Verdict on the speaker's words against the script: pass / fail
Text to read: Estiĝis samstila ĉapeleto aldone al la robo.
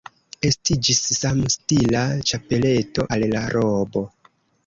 fail